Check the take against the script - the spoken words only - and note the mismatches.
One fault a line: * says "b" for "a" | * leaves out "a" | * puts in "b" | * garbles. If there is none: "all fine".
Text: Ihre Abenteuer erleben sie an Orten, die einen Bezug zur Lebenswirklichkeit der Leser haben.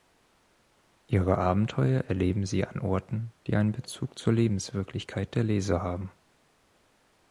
all fine